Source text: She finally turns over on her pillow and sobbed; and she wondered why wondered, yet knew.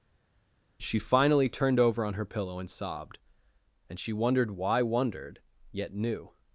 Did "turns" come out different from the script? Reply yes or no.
yes